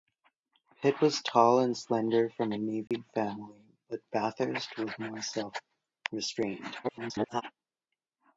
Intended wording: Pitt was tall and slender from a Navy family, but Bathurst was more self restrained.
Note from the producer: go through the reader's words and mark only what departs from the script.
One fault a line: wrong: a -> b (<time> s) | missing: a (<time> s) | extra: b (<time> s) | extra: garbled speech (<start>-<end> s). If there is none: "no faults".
extra: garbled speech (6.8-7.4 s)